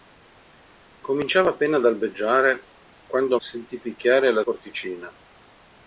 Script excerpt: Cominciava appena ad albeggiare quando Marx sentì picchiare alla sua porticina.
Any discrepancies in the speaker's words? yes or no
yes